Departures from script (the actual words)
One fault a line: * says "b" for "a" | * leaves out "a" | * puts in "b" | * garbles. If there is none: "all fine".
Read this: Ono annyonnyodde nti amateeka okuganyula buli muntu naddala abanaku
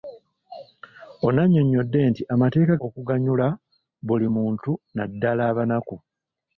all fine